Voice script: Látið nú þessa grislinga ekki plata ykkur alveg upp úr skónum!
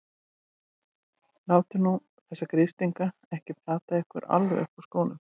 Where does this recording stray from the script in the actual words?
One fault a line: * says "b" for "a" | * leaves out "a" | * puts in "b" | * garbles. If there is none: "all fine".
all fine